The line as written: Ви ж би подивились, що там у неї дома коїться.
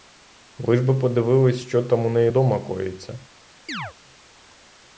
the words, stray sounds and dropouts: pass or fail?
fail